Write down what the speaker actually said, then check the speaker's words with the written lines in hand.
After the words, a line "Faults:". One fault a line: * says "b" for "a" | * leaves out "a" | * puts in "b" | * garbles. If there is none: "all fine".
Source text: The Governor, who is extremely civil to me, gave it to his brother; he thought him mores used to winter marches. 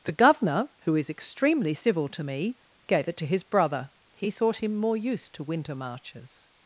The Governor, who is extremely civil to me, gave it to his brother; he thought him more used to winter marches.
Faults:
* says "more" for "mores"